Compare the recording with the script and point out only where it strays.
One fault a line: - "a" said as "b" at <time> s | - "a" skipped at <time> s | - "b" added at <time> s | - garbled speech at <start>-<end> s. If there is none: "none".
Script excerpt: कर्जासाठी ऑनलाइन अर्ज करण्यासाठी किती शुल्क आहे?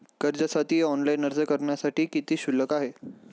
none